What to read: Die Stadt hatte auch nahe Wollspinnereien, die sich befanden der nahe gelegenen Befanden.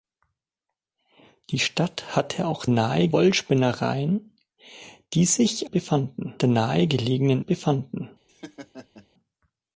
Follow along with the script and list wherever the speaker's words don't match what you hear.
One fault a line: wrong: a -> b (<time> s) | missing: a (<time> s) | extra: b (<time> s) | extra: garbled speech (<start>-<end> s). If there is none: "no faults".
no faults